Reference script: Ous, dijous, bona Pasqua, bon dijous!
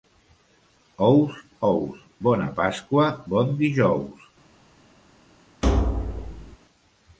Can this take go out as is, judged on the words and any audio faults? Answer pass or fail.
fail